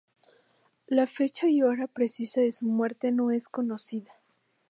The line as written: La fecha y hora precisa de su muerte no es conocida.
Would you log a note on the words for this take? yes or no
no